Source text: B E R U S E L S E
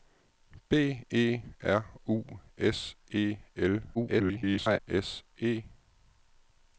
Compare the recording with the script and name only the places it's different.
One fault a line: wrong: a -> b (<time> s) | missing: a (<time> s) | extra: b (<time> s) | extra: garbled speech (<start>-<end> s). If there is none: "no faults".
extra: garbled speech (3.9-4.8 s)